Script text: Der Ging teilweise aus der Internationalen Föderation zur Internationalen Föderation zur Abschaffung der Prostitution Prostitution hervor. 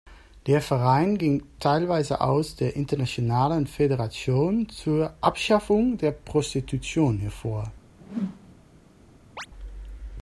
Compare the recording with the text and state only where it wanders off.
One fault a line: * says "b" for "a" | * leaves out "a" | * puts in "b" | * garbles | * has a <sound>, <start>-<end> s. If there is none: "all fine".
* puts in "Verein"
* leaves out "Internationalen Föderation zur"
* leaves out "Prostitution"
* has a whoosh, 8.0-8.5 s
* has a chirp, 9.4-9.5 s